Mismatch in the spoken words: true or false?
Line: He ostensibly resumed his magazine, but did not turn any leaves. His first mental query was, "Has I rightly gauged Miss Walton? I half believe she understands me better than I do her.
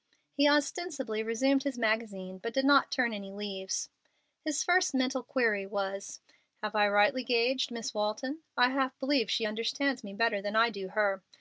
true